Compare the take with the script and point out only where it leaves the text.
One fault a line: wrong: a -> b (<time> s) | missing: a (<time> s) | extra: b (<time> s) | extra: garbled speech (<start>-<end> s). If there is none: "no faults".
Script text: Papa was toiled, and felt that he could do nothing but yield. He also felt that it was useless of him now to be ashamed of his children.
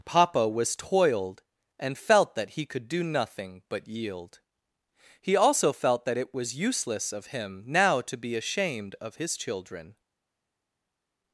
no faults